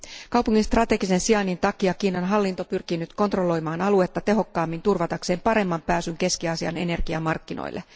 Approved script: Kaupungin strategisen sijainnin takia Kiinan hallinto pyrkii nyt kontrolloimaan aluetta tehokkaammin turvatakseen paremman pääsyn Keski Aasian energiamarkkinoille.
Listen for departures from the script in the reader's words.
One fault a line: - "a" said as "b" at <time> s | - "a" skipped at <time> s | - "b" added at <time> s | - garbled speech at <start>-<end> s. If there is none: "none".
none